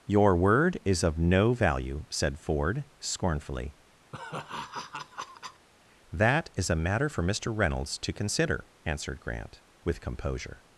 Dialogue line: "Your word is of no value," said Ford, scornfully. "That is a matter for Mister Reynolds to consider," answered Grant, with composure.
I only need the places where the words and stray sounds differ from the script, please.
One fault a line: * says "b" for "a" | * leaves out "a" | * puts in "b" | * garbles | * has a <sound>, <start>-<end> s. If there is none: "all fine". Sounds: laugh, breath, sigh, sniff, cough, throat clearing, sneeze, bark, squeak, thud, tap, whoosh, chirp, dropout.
* has a laugh, 4.1-5.7 s